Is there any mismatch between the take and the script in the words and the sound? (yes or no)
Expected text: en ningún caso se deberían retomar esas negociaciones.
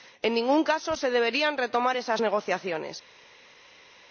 no